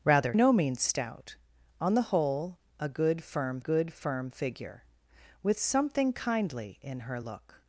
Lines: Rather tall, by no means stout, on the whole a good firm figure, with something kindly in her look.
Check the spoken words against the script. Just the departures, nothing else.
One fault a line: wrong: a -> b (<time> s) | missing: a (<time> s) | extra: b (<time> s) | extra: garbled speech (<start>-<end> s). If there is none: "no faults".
missing: tall by (0.3 s)
extra: good firm (3.6 s)